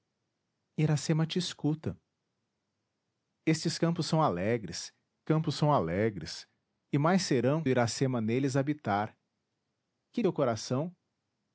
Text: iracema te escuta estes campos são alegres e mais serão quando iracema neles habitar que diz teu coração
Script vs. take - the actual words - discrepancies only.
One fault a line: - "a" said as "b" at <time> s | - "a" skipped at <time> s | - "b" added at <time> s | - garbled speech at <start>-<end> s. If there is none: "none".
- "campos são alegres" added at 5.2 s
- "quando" skipped at 7.6 s
- "diz" skipped at 10.2 s